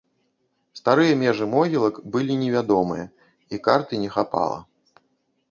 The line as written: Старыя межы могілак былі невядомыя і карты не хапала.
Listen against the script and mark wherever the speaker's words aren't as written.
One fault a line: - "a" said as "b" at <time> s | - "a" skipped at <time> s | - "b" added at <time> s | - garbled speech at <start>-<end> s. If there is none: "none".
none